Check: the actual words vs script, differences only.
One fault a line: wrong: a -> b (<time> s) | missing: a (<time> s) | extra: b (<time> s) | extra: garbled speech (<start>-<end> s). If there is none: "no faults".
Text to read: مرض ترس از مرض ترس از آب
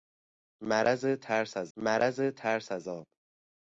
no faults